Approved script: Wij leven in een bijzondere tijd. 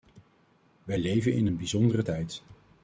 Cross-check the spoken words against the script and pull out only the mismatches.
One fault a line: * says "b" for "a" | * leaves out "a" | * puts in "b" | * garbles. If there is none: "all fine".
all fine